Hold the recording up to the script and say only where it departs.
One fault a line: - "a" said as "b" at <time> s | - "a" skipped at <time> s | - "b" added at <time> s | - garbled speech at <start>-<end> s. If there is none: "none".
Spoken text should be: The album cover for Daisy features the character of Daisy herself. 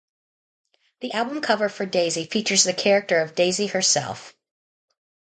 none